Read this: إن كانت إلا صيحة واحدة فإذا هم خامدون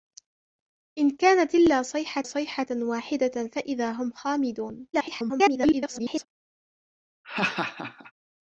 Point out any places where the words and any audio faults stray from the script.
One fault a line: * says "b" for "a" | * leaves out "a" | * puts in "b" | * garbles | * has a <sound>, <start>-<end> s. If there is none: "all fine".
* puts in "صيحة"
* garbles
* has a laugh, 7.2-8.1 s